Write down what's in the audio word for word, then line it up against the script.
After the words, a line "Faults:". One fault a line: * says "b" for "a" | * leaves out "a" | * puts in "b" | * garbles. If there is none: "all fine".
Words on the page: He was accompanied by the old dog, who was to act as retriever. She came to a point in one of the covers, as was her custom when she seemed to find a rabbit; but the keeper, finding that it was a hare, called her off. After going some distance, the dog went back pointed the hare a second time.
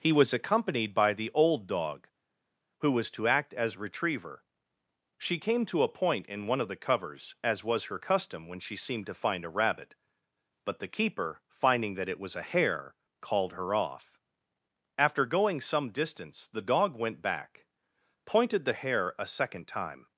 He was accompanied by the old dog, who was to act as retriever. She came to a point in one of the covers, as was her custom when she seemed to find a rabbit; but the keeper, finding that it was a hare, called her off. After going some distance, the dog went back pointed the hare a second time.
Faults:
all fine